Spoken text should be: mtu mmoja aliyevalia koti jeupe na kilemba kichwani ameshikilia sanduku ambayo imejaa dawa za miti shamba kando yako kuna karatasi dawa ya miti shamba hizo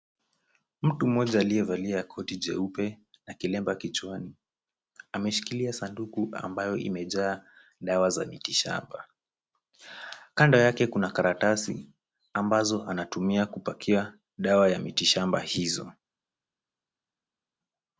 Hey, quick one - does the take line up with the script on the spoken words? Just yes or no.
no